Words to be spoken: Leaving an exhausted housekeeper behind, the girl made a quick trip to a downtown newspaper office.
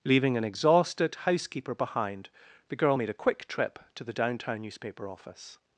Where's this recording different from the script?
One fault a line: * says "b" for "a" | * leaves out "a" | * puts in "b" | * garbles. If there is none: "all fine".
* says "the" for "a"